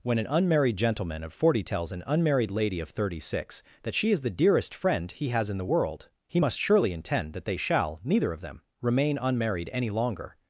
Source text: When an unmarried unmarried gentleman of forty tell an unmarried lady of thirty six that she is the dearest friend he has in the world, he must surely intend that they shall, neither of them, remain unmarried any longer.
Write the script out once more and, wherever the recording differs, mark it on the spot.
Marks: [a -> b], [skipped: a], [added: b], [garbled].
When an unmarried [skipped: unmarried] gentleman of forty [tell -> tells] an unmarried lady of thirty six that she is the dearest friend he has in the world, he must surely intend that they shall, neither of them, remain unmarried any longer.